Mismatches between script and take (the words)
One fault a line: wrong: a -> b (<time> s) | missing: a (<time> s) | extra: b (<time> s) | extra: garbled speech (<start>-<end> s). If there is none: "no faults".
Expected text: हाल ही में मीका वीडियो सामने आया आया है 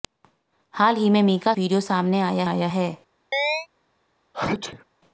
no faults